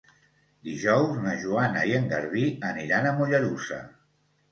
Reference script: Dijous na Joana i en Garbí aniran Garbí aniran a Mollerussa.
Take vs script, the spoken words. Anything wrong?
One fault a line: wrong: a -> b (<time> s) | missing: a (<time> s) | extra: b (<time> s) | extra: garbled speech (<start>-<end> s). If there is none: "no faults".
missing: Garbí aniran (3.1 s)